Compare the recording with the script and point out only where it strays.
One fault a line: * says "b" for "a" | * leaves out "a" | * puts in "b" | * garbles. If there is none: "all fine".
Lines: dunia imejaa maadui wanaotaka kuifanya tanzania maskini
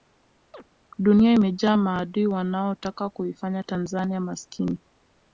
all fine